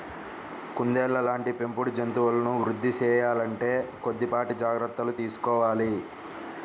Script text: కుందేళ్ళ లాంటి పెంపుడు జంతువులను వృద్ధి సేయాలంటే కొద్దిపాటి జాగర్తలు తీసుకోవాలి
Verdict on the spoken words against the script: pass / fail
pass